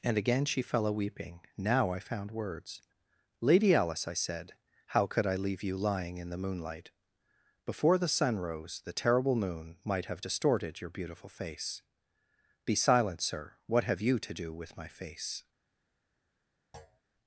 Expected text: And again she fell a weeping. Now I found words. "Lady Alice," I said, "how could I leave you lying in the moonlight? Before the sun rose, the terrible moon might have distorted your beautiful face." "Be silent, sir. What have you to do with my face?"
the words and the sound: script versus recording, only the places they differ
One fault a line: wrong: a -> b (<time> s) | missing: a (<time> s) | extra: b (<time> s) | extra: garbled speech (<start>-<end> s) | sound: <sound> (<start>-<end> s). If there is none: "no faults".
sound: thud (16.7-17.0 s)